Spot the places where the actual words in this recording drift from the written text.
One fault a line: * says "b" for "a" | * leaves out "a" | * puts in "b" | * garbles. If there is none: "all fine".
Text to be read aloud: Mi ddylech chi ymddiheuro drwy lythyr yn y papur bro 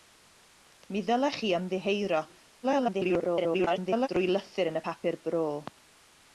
* garbles